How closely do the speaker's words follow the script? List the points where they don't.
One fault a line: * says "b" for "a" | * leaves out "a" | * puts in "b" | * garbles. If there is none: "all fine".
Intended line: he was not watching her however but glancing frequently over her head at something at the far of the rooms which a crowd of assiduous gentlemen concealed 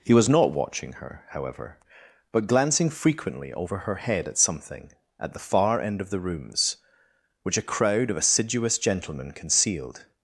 * puts in "end"